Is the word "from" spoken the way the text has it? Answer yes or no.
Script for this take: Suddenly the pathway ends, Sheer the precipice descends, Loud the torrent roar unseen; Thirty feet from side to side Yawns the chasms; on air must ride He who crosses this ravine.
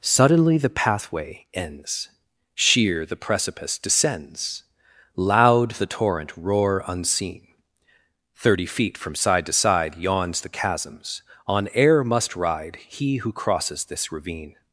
yes